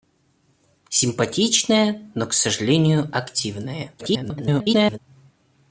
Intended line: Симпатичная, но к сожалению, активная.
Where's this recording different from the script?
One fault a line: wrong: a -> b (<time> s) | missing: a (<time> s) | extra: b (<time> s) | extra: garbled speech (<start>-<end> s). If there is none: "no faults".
extra: garbled speech (4.0-5.0 s)